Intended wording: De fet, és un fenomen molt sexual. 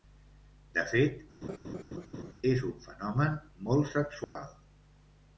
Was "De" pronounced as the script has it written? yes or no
yes